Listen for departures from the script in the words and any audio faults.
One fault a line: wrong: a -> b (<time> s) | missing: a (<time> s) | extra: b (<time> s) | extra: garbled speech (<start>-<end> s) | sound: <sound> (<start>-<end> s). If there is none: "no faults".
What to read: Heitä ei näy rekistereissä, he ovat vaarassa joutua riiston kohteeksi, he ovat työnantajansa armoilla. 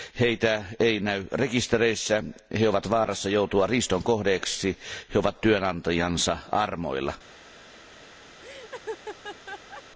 sound: laugh (8.4-9.8 s)